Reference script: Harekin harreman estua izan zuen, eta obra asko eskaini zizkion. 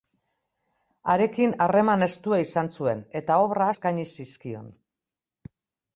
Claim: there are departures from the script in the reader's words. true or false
true